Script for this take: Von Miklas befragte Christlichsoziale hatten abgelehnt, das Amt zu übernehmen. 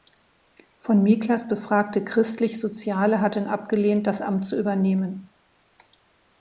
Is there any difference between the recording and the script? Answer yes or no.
no